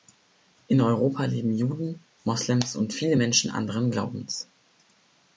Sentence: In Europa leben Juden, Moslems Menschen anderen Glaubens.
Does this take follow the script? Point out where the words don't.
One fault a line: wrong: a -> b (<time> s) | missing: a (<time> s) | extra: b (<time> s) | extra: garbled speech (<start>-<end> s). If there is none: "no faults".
extra: und viele (2.8 s)